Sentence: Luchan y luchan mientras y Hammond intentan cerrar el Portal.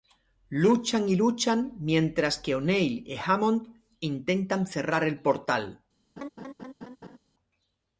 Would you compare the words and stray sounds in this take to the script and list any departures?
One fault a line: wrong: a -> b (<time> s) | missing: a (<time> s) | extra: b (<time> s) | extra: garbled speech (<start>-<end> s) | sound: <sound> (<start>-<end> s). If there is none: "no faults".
extra: que O'Neill (2.4 s)
sound: laugh (6.2-7.2 s)